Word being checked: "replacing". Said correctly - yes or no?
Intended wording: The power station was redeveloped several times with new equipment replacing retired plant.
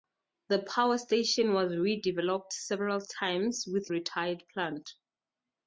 no